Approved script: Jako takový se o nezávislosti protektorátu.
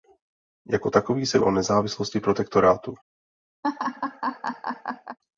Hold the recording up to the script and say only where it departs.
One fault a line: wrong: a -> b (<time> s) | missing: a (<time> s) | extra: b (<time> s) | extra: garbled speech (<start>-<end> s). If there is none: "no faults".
no faults